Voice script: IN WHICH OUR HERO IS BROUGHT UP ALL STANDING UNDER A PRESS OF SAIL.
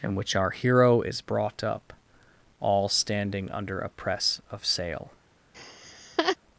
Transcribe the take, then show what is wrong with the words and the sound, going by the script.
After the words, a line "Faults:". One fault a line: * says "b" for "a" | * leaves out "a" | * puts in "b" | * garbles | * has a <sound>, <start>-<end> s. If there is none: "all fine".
IN WHICH OUR HERO IS BROUGHT UP ALL STANDING UNDER A PRESS OF SAIL.
Faults:
* has a laugh, 5.5-6.4 s